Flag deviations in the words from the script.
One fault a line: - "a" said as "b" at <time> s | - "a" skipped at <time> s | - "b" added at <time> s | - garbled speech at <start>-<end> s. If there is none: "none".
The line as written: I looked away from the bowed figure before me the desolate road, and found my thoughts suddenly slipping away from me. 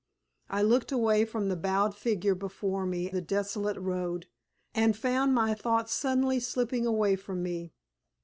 none